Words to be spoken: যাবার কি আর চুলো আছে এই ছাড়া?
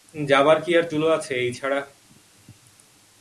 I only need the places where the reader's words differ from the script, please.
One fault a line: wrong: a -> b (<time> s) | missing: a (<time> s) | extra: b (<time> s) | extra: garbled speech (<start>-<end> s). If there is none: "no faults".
no faults